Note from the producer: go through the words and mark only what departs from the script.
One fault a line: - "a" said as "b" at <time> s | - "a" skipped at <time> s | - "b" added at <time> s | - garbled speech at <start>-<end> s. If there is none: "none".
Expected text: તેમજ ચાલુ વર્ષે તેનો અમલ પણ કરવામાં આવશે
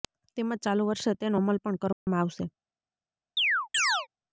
none